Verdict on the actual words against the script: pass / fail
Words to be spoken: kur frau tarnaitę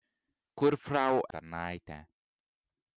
pass